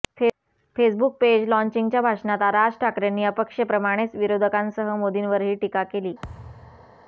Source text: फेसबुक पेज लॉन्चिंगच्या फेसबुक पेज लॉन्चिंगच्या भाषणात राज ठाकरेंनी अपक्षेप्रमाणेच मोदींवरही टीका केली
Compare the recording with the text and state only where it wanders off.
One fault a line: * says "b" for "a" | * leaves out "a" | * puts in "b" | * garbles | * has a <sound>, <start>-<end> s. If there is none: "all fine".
* leaves out "फेसबुक पेज लॉन्चिंगच्या"
* puts in "विरोधकांसह"
* has a thud, 6.2-7.0 s